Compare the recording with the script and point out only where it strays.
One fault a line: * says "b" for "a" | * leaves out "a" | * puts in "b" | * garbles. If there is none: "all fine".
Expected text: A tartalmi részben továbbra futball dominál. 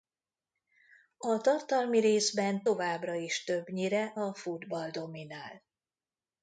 * puts in "is többnyire a"